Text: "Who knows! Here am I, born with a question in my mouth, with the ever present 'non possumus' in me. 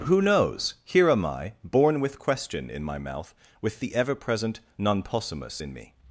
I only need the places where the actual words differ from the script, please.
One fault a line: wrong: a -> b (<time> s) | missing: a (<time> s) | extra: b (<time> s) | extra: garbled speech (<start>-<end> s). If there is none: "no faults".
missing: a (2.2 s)